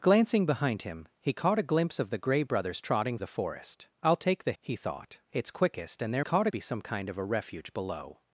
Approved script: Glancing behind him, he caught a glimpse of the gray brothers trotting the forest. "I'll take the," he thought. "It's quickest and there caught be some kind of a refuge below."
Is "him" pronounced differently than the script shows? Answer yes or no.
no